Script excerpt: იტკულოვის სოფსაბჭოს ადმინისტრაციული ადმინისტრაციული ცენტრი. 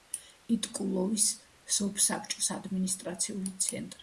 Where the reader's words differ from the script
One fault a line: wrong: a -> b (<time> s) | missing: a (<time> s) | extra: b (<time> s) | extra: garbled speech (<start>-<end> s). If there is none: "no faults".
missing: ადმინისტრაციული (3.6 s)